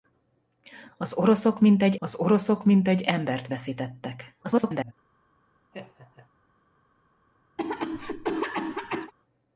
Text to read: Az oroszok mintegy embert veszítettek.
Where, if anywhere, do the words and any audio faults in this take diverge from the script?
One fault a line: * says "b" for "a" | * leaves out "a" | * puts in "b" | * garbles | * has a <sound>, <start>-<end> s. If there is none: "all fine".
* puts in "az oroszok mintegy"
* garbles
* has a laugh, 5.7-6.3 s
* has a cough, 7.6-9.1 s